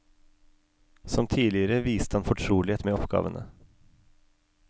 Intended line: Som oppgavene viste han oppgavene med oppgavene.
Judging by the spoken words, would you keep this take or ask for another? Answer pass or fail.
fail